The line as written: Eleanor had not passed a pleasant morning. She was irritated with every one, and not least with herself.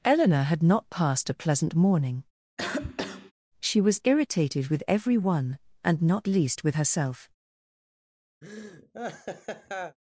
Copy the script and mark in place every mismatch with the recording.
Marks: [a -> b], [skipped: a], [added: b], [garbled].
Eleanor had not passed a pleasant morning. She was irritated with every one, and not least with herself.